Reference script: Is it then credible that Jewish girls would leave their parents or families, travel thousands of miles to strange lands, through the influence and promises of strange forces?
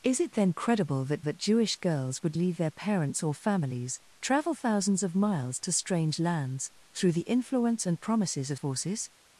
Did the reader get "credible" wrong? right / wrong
right